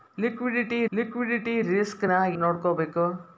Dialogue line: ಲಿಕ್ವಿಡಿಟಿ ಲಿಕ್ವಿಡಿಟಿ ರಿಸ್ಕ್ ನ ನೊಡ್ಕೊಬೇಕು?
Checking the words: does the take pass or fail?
pass